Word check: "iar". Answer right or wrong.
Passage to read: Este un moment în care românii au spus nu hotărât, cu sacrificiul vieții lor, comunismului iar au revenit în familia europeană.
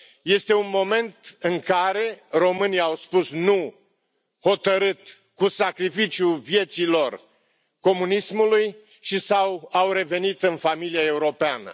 wrong